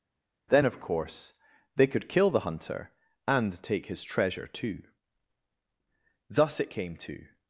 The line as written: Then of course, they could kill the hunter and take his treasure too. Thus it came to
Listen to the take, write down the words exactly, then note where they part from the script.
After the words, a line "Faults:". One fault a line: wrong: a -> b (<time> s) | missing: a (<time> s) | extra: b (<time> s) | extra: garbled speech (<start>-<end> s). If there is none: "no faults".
Then of course, they could kill the hunter and take his treasure too. Thus it came to
Faults:
no faults